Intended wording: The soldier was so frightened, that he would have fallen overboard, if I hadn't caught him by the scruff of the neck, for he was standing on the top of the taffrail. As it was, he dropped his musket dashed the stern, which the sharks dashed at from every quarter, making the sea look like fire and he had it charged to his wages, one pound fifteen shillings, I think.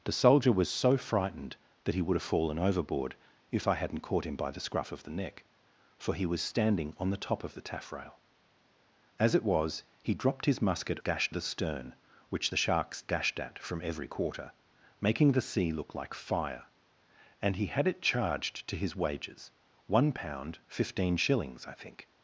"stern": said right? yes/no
yes